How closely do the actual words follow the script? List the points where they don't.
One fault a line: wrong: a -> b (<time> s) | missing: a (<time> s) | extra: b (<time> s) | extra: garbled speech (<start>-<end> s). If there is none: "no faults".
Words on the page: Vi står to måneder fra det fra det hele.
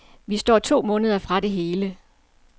missing: fra det (1.5 s)